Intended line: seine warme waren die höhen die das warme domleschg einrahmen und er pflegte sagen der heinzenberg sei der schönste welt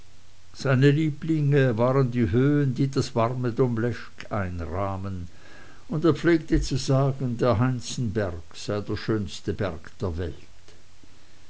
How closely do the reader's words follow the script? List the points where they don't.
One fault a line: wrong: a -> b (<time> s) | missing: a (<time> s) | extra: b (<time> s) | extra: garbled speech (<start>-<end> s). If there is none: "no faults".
wrong: warme -> lieblinge (0.9 s)
extra: zu (6.6 s)
extra: berg der (9.5 s)